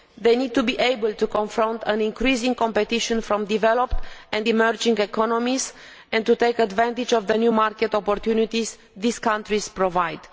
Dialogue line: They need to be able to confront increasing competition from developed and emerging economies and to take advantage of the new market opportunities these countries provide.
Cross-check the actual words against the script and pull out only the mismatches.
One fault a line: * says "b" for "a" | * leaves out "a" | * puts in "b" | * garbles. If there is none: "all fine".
all fine